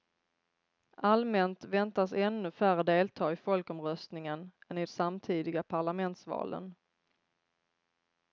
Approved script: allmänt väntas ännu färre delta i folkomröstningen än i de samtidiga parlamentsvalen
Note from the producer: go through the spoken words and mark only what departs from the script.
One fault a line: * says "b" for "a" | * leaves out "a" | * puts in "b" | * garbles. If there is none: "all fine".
* leaves out "de"